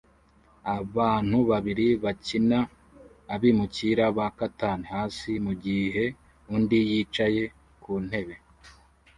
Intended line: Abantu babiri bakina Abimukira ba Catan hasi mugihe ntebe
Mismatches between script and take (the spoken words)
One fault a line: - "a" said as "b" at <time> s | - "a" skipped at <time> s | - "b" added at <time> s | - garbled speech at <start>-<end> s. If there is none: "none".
- "undi yicaye ku" added at 6.5 s